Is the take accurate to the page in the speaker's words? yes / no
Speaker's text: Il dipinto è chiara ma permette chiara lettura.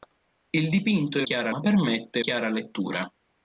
yes